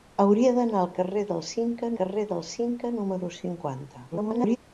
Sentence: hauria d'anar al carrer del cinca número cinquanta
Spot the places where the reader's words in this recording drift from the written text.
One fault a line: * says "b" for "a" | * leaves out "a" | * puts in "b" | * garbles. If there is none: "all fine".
* puts in "carrer del cinca"
* garbles